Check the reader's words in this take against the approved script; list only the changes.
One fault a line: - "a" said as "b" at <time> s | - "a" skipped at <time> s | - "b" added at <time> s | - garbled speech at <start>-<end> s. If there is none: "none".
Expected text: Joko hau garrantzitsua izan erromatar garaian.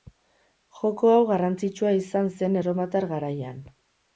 - "zen" added at 2.4 s